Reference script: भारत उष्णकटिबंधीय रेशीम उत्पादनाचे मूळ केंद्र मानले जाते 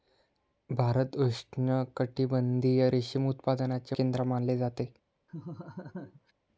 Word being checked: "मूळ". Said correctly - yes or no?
no